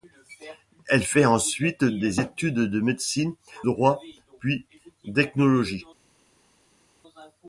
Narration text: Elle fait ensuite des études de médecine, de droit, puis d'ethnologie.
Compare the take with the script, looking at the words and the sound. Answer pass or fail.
fail